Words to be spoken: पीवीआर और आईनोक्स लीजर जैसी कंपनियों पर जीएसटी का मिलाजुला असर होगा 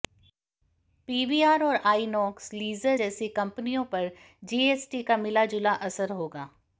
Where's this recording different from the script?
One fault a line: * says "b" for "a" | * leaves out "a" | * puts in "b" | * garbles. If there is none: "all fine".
all fine